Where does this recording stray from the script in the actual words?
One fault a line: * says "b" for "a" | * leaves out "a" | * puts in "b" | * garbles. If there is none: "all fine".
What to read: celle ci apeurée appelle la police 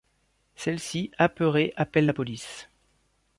all fine